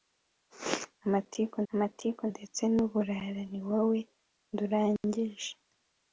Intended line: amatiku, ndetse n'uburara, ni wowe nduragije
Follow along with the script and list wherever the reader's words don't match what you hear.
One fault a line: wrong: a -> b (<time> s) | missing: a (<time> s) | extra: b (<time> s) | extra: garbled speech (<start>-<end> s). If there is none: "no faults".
extra: amatiku (1.7 s)